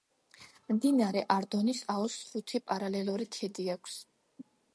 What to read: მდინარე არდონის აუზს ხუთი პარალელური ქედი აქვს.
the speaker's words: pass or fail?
pass